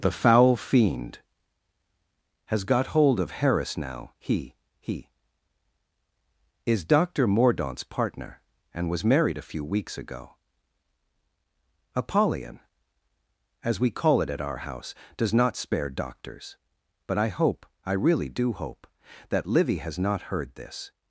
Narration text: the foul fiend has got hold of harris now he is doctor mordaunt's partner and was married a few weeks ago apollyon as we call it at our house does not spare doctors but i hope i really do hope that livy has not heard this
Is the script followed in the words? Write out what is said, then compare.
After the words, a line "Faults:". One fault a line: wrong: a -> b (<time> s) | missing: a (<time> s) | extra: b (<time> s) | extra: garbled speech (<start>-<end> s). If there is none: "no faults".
the foul fiend has got hold of harris now he he is doctor mordaunt's partner and was married a few weeks ago apollyon as we call it at our house does not spare doctors but i hope i really do hope that livy has not heard this
Faults:
extra: he (4.8 s)